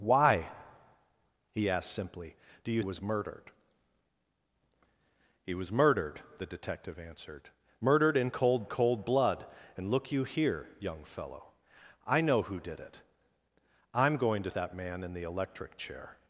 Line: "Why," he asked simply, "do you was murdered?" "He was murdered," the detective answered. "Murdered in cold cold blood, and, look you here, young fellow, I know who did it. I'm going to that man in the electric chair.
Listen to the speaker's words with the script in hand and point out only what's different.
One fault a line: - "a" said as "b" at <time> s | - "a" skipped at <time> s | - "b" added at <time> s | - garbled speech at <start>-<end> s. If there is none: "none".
none